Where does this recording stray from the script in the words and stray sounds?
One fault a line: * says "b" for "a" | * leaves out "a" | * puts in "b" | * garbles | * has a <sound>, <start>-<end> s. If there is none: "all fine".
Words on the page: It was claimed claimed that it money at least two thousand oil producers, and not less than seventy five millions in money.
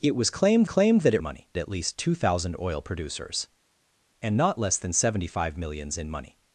all fine